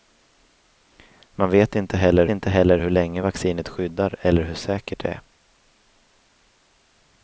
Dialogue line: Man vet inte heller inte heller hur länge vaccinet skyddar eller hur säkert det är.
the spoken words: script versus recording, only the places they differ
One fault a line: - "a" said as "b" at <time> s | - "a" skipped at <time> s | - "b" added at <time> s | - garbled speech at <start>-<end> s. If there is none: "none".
none